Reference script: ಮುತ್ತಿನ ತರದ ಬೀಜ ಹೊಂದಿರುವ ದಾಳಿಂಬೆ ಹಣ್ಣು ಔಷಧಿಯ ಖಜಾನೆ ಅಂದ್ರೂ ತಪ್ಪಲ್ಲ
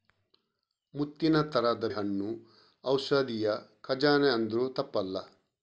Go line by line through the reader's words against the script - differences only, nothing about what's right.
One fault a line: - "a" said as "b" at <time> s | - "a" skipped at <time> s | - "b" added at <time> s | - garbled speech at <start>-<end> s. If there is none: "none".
- "ಬೀಜ ಹೊಂದಿರುವ ದಾಳಿಂಬೆ" skipped at 1.9 s